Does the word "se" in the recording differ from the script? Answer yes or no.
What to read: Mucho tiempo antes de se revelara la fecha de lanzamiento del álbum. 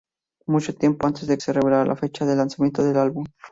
no